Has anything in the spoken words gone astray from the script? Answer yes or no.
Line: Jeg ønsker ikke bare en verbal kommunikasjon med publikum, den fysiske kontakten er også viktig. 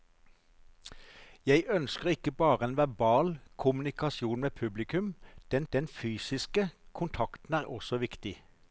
yes